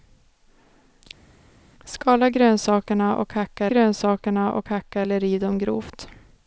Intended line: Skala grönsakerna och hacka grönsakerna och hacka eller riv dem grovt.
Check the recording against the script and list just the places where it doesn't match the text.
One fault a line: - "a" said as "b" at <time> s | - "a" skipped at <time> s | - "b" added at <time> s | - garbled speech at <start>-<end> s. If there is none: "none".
none